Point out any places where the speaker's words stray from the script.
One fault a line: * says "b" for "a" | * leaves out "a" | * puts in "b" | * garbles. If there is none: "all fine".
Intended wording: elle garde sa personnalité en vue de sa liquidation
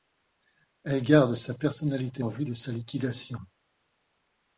all fine